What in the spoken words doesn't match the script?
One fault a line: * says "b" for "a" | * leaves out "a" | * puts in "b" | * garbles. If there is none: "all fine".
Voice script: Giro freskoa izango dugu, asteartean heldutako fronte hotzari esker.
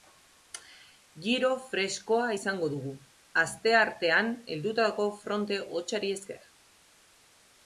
all fine